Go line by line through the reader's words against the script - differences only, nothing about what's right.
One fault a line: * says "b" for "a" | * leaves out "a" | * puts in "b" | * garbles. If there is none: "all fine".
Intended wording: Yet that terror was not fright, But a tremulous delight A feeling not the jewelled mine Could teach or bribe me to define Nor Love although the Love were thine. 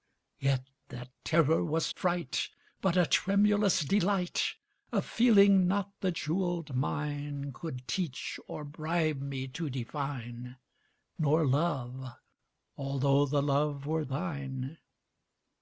* leaves out "not"